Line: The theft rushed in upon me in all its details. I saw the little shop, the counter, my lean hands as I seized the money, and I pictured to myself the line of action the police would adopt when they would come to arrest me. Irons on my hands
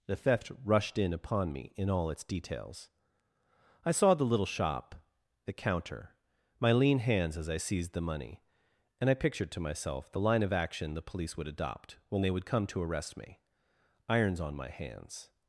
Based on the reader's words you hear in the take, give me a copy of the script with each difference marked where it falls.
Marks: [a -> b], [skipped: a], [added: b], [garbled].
The theft rushed in upon me in all its details. I saw the little shop, the counter, my lean hands as I seized the money, and I pictured to myself the line of action the police would adopt when they would come to arrest me. Irons on my hands